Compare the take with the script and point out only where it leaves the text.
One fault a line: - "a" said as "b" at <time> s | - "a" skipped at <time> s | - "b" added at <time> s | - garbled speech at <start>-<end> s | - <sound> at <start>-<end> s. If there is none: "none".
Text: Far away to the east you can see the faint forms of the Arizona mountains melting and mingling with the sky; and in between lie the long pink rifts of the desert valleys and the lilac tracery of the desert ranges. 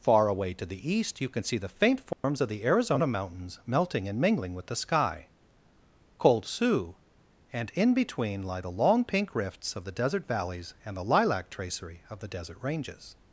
- dropout at 2.1-2.2 s
- "cold sioux" added at 6.2 s